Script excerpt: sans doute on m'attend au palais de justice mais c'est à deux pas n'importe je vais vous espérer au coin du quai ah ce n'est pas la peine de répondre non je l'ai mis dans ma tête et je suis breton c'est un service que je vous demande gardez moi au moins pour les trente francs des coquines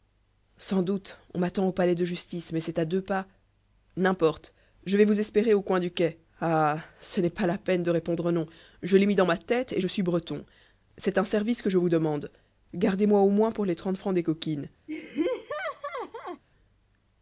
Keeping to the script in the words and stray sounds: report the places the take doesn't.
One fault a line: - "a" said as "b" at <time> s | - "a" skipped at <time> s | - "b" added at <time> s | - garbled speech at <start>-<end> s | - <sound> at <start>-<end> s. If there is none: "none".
- laugh at 14.9-16.4 s